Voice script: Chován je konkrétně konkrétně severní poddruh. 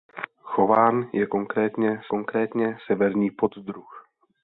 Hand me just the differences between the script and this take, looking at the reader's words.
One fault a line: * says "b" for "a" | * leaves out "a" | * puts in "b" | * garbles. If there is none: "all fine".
all fine